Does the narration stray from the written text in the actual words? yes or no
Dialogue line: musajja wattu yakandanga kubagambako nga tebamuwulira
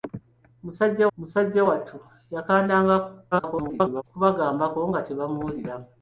yes